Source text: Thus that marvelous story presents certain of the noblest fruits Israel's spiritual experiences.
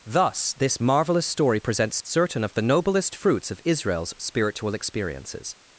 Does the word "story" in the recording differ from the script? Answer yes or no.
no